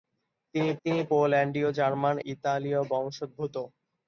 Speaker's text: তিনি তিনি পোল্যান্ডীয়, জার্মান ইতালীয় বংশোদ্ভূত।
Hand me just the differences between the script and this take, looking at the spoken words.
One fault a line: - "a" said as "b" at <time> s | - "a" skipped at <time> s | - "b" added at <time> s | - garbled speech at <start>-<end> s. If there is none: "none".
none